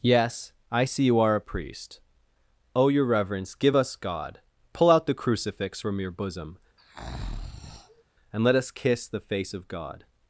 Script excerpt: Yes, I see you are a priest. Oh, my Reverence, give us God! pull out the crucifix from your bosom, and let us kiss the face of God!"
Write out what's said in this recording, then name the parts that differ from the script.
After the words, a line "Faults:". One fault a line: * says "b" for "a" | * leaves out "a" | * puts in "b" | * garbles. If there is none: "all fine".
Yes, I see you are a priest. Oh, your Reverence, give us God! pull out the crucifix from your bosom, and let us kiss the face of God!"
Faults:
* says "your" for "my"